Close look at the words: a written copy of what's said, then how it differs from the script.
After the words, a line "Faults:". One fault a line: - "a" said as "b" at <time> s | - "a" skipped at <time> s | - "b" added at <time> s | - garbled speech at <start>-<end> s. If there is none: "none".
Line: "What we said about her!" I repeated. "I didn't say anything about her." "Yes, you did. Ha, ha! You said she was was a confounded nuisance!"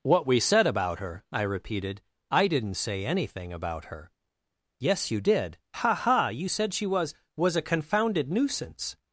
"What we said about her!" I repeated. "I didn't say anything about her." "Yes, you did. Ha, ha! You said she was was a confounded nuisance!"
Faults:
none